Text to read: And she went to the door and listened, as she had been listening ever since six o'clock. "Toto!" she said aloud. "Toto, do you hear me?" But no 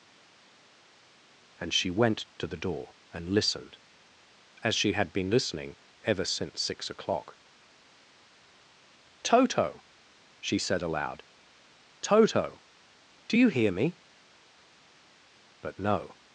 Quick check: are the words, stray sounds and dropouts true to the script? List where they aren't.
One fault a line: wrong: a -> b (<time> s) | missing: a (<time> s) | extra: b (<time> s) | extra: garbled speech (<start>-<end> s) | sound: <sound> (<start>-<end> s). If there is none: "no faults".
no faults